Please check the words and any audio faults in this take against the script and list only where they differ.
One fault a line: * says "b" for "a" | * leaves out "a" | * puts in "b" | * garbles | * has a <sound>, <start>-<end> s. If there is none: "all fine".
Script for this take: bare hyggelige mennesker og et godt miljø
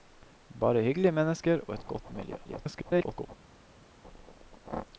* garbles